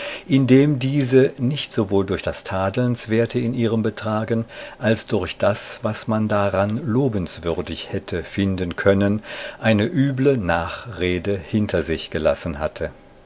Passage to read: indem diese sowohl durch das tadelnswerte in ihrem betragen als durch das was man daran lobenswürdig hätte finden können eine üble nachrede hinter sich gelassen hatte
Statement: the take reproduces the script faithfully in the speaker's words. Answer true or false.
false